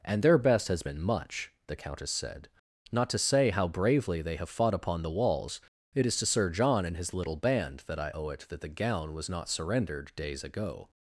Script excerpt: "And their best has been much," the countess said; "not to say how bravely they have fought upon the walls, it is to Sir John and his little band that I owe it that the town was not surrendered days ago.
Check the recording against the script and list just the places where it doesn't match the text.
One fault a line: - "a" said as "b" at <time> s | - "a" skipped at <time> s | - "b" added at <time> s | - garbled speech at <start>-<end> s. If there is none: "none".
- "town" said as "gown" at 8.7 s